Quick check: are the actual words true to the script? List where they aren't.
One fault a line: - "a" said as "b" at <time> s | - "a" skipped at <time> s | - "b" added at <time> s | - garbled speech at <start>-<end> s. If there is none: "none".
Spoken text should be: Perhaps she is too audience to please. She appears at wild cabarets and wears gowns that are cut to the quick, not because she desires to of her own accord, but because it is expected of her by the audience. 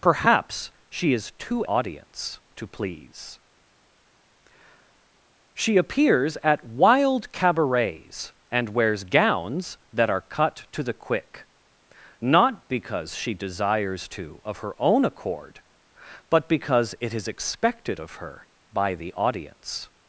none